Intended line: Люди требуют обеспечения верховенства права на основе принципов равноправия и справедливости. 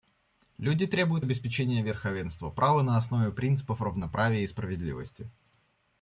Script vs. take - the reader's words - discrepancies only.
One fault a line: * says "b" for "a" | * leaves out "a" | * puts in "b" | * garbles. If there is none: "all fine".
all fine